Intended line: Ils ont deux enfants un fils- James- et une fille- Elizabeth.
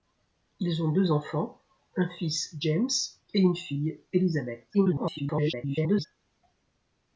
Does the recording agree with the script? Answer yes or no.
no